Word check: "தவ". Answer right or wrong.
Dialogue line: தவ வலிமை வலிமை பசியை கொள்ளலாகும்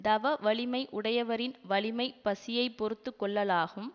right